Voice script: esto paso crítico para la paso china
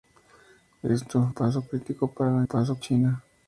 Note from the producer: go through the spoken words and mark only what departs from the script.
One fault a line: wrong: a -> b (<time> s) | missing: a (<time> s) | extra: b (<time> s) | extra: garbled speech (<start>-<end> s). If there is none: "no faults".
no faults